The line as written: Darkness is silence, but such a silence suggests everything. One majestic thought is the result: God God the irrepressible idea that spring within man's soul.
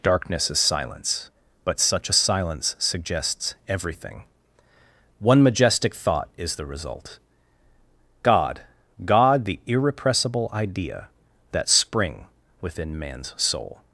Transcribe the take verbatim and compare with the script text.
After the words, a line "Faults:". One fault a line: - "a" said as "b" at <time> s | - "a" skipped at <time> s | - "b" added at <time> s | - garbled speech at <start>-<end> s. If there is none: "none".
Darkness is silence, but such a silence suggests everything. One majestic thought is the result: God God the irrepressible idea that spring within man's soul.
Faults:
none